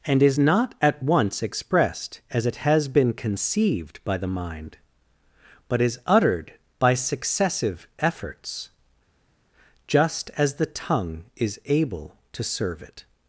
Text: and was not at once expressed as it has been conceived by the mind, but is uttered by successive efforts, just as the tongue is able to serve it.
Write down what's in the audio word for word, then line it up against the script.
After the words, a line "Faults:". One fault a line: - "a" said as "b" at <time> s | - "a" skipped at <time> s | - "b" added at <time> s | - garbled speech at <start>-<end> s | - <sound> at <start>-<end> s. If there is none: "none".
and is not at once expressed as it has been conceived by the mind, but is uttered by successive efforts, just as the tongue is able to serve it.
Faults:
- "was" said as "is" at 0.2 s